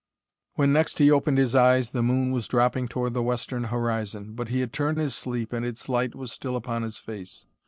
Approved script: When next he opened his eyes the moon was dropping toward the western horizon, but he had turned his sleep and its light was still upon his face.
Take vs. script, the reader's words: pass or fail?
pass